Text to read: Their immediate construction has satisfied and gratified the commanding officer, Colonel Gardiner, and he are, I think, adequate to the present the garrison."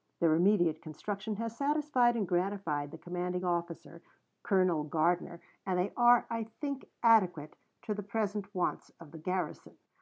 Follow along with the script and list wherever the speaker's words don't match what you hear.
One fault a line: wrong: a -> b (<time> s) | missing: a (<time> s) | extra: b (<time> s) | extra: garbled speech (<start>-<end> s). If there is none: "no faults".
wrong: he -> they (5.8 s)
extra: wants of (8.6 s)